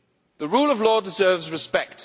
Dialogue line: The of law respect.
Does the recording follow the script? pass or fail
fail